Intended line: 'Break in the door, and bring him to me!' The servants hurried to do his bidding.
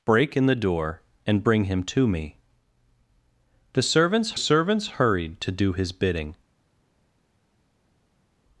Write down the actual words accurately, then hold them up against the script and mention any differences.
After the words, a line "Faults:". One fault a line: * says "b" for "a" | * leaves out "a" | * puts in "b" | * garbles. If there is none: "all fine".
'Break in the door, and bring him to me!' The servants servants hurried to do his bidding.
Faults:
* puts in "servants"